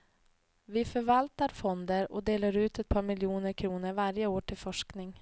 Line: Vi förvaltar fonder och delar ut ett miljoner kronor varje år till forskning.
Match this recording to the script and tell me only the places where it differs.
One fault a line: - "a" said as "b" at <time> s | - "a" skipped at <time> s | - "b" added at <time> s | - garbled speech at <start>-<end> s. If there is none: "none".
- "par" added at 2.9 s